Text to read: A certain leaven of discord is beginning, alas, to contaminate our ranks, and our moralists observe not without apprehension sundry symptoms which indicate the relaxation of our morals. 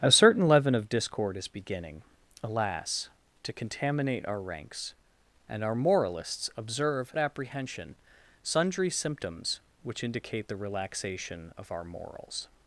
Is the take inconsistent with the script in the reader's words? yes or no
yes